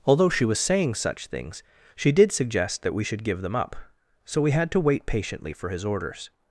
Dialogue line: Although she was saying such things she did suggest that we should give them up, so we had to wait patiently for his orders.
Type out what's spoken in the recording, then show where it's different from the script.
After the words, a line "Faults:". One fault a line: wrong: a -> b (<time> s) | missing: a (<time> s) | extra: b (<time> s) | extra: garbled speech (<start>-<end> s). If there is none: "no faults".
Although she was saying such things she did suggest that we should give them up, so we had to wait patiently for his orders.
Faults:
no faults